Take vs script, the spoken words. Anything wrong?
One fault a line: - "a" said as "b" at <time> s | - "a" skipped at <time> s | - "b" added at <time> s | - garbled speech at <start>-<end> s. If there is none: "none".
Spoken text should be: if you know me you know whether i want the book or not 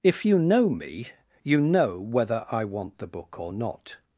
none